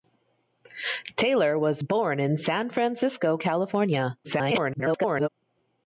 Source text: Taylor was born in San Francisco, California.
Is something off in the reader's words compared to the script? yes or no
yes